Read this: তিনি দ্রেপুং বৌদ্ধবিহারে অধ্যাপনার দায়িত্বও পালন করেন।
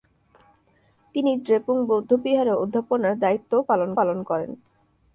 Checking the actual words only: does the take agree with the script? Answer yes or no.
no